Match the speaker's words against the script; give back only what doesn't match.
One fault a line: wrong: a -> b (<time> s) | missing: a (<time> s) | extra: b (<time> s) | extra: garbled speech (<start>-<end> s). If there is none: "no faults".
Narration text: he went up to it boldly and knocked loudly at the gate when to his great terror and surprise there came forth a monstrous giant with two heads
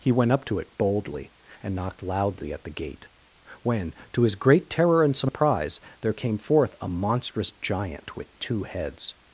no faults